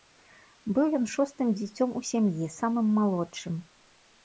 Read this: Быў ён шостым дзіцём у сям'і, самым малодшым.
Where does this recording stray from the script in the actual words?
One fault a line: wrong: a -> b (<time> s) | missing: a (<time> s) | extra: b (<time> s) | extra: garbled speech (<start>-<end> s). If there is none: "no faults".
no faults